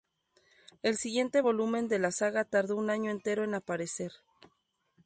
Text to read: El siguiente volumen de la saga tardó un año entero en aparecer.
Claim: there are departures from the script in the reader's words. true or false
false